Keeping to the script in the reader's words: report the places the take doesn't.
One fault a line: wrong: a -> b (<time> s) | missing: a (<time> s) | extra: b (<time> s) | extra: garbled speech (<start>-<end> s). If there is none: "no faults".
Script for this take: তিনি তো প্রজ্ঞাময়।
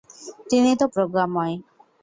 no faults